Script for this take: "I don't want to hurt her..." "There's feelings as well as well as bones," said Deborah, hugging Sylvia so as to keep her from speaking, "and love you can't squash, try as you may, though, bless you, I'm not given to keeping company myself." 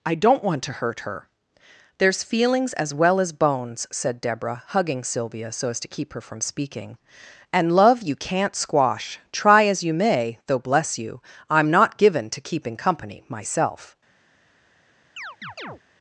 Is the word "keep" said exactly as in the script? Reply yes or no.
yes